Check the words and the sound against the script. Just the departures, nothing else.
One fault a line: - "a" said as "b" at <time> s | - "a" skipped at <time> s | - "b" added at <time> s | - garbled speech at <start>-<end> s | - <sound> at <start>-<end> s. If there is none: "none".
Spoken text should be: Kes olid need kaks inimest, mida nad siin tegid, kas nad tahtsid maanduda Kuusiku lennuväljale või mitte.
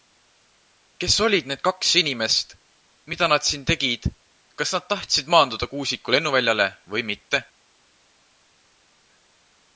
none